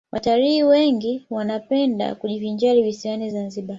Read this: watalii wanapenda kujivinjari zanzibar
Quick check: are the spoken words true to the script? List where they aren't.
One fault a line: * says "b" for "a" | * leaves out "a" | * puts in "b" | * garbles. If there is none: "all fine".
* puts in "wengi"
* puts in "visiwani"